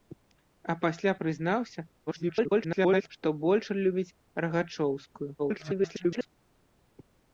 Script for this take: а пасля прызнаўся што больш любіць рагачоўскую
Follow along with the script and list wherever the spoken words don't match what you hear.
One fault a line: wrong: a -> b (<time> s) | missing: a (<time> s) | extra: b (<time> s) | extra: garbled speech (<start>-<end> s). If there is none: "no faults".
extra: garbled speech (2.1-3.1 s)
extra: garbled speech (5.4-6.3 s)